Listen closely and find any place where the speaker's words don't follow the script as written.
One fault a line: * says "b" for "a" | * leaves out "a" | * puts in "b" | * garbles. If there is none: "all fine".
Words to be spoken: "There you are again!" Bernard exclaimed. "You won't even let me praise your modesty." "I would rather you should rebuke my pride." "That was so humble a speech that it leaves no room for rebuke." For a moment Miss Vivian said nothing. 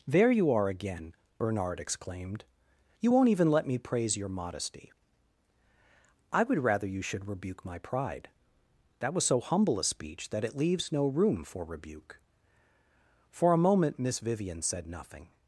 all fine